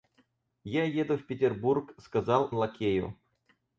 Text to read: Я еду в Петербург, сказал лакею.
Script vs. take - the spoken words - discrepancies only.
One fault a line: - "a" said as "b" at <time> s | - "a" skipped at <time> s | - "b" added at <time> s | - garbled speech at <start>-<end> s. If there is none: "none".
none